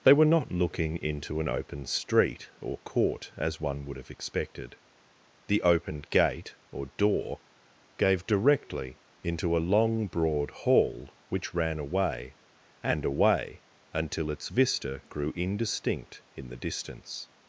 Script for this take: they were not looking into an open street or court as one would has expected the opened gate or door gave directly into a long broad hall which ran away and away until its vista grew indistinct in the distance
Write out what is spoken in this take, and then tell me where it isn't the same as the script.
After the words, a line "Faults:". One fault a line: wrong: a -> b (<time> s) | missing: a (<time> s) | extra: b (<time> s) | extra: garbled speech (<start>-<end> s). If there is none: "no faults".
they were not looking into an open street or court as one would have expected the opened gate or door gave directly into a long broad hall which ran away and away until its vista grew indistinct in the distance
Faults:
wrong: has -> have (4.0 s)